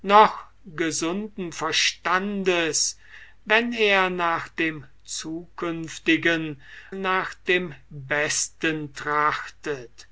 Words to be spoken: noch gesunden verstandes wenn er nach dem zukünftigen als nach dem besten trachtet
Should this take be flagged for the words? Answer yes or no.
yes